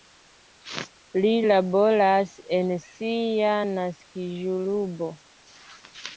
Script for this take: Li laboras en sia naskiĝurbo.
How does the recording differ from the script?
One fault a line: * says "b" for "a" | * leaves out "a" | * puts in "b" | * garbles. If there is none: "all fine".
all fine